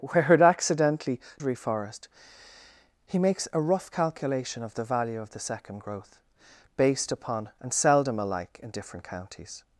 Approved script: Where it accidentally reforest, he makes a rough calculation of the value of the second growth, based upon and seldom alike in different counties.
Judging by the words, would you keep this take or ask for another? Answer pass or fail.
pass